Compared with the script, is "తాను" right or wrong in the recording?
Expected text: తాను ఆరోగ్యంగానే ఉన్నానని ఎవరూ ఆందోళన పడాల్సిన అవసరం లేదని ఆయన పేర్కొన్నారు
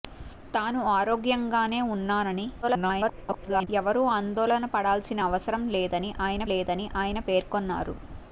right